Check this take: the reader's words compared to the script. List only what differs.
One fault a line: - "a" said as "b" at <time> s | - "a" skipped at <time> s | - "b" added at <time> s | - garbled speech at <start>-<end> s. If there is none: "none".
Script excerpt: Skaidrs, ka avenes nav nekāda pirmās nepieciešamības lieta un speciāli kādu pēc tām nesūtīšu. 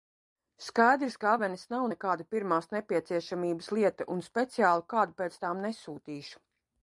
none